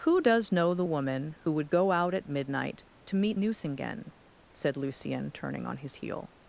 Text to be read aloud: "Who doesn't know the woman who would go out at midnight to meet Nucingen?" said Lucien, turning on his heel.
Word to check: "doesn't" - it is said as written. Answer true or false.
false